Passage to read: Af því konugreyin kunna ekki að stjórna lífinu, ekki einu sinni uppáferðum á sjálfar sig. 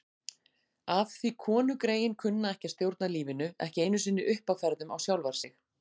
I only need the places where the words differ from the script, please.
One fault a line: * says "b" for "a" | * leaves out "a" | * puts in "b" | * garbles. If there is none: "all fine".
all fine